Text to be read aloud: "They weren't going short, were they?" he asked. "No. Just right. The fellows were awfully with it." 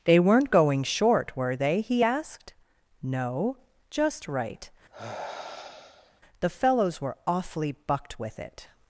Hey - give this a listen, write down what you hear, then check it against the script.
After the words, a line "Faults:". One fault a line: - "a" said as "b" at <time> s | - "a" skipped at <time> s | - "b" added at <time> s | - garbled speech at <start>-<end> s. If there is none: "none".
"They weren't going short, were they?" he asked. "No. Just right. The fellows were awfully bucked with it."
Faults:
- "bucked" added at 7.7 s